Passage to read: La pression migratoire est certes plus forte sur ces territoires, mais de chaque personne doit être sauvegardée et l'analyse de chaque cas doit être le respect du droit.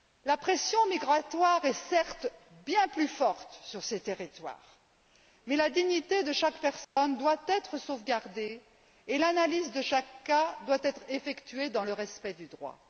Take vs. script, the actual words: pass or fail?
fail